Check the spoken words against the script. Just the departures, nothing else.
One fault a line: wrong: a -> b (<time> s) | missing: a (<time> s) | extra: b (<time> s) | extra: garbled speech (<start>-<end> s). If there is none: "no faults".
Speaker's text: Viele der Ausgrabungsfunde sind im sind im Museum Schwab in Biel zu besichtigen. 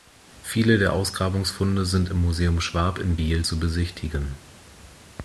missing: sind im (2.2 s)